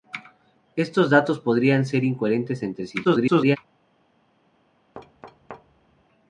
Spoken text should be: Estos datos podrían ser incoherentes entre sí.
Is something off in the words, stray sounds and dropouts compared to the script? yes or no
yes